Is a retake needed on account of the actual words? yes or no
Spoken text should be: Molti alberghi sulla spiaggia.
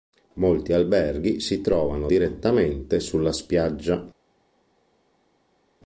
yes